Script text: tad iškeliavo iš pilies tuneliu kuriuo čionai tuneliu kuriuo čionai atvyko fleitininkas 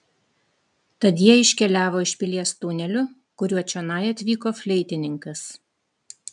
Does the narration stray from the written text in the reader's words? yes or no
yes